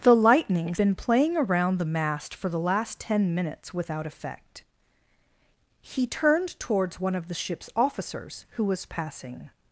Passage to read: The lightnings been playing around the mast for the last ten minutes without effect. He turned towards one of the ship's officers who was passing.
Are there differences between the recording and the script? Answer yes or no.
no